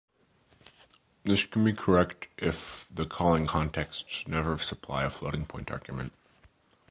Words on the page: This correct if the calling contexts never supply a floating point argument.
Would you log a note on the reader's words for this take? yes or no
yes